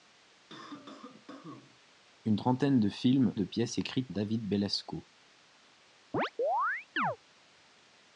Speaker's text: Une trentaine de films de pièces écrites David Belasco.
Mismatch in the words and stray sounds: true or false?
true